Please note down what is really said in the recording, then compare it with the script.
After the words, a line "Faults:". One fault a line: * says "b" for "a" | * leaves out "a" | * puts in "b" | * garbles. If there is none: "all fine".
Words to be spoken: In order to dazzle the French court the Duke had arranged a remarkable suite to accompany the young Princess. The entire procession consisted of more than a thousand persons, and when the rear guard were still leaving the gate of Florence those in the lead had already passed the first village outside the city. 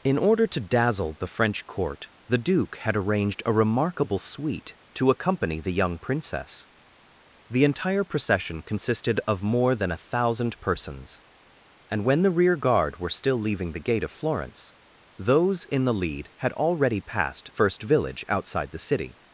In order to dazzle the French court the Duke had arranged a remarkable suite to accompany the young Princess. The entire procession consisted of more than a thousand persons, and when the rear guard were still leaving the gate of Florence those in the lead had already passed first village outside the city.
Faults:
* leaves out "the"